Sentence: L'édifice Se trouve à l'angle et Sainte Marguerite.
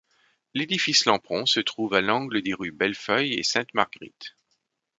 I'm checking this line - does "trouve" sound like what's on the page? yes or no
yes